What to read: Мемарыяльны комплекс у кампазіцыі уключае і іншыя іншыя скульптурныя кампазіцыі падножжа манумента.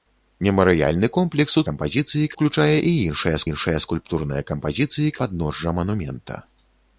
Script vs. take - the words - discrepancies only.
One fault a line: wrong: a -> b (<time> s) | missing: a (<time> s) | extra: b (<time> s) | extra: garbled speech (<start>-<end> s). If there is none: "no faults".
no faults